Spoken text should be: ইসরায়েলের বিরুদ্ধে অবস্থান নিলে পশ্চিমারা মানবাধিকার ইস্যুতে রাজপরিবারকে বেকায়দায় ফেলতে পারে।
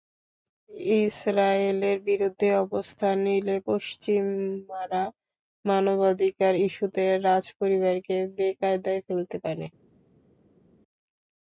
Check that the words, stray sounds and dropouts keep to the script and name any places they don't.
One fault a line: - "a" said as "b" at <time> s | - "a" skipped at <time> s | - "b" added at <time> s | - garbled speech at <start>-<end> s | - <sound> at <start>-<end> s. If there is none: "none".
none